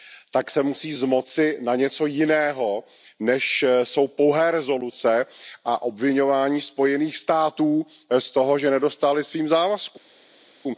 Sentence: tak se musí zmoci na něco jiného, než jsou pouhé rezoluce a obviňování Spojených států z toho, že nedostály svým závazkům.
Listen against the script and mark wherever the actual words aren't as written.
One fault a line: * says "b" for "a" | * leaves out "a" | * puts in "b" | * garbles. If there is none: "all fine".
all fine